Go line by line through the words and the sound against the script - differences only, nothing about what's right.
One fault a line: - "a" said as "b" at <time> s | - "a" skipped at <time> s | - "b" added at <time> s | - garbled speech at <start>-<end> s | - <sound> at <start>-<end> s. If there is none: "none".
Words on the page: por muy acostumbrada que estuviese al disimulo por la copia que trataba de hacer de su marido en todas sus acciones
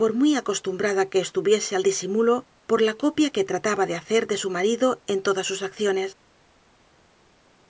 none